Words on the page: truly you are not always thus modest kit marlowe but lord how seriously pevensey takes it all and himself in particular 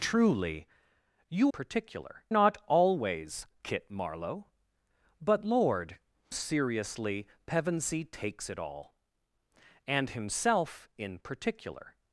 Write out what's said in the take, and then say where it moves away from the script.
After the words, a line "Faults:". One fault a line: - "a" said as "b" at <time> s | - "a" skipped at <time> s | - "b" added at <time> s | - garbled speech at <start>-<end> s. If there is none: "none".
truly you particular not always kit marlowe but lord seriously pevensey takes it all and himself in particular
Faults:
- "are" said as "particular" at 1.5 s
- "thus modest" skipped at 3.5 s
- "how" skipped at 6.0 s